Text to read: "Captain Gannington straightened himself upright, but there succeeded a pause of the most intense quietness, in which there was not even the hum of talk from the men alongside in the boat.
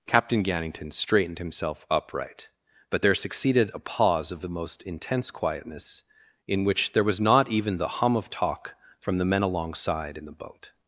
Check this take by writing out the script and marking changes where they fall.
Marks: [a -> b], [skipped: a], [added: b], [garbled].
"Captain Gannington straightened himself upright, but there succeeded a pause of the most intense quietness, in which there was not even the hum of talk from the men alongside in the boat.